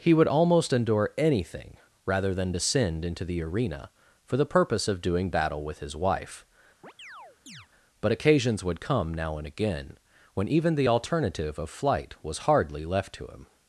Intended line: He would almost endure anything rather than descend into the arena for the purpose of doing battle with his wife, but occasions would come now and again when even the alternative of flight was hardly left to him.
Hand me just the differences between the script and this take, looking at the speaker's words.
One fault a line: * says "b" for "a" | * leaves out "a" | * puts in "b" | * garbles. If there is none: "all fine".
all fine